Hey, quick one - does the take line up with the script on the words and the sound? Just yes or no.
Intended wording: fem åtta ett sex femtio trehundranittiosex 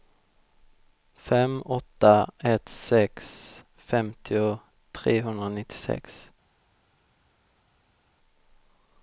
yes